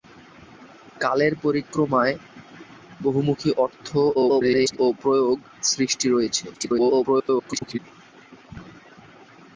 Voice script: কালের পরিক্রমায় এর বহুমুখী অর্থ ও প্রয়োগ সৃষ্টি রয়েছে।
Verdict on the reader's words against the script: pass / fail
fail